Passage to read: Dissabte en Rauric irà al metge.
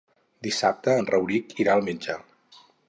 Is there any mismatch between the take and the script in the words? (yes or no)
no